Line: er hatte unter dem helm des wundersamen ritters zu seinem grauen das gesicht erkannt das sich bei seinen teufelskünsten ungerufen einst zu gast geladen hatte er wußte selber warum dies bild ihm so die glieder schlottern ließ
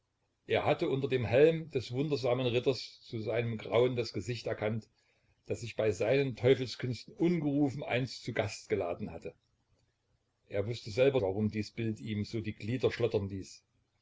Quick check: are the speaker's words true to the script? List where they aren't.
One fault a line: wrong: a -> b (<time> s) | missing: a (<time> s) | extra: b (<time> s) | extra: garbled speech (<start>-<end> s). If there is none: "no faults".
no faults